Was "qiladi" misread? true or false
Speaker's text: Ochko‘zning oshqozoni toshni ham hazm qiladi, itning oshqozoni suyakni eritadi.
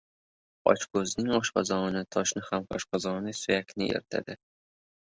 true